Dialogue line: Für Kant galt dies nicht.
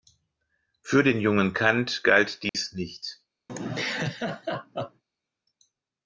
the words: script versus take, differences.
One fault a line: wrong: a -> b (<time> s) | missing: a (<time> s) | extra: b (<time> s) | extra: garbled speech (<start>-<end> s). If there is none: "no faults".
extra: den jungen (1.0 s)